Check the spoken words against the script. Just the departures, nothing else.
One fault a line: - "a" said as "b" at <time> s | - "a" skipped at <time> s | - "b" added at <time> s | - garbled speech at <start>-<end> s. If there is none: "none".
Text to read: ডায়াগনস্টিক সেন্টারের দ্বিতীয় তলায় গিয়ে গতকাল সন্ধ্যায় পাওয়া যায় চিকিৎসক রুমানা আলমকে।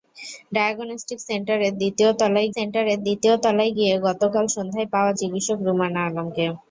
- "সেন্টারের দ্বিতীয় তলায়" added at 2.5 s
- "যায়" skipped at 5.1 s